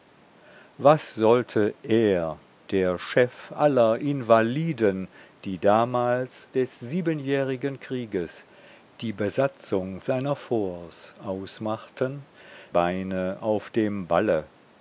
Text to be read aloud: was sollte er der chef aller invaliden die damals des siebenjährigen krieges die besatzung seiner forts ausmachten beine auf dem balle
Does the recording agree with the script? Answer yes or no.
yes